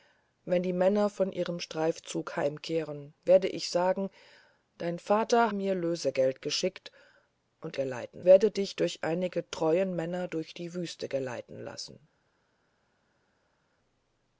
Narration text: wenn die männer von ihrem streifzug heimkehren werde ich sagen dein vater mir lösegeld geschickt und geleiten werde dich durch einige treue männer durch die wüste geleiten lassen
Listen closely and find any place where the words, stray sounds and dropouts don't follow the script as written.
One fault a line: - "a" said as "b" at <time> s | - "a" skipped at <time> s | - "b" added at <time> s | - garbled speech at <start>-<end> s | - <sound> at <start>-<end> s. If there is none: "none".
none